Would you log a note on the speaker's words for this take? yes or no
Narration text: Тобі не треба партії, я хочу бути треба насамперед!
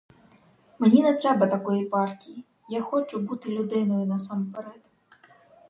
yes